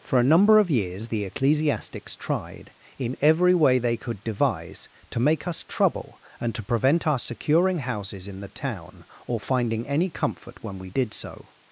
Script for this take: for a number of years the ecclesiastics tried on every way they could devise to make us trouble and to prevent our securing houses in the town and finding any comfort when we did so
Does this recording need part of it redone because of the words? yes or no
yes